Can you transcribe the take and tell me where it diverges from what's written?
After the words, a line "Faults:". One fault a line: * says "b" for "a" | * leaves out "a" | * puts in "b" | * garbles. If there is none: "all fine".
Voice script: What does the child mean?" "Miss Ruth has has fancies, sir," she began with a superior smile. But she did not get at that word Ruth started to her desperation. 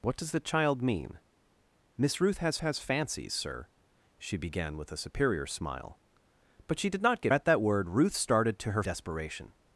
What does the child mean?" "Miss Ruth has has fancies, sir," she began with a superior smile. But she did not get at that word Ruth started to her desperation.
Faults:
all fine